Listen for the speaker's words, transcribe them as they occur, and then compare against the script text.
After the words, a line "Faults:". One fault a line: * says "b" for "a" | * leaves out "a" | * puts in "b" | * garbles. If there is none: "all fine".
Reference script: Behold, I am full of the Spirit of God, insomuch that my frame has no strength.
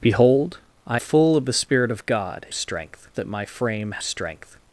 Behold, I full of the Spirit of God, strength that my frame strength.
Faults:
* leaves out "am"
* says "strength" for "insomuch"
* leaves out "has no"